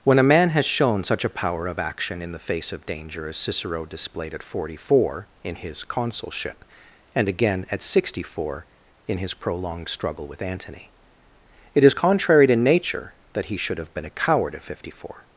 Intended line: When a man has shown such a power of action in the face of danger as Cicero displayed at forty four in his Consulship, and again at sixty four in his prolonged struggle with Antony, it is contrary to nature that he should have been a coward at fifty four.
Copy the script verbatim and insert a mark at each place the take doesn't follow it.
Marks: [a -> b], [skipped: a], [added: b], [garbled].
When a man has shown such a power of action in the face of danger as Cicero displayed at forty four in his Consulship, and again at sixty four in his prolonged struggle with Antony, it is contrary to nature that he should have been a coward at fifty four.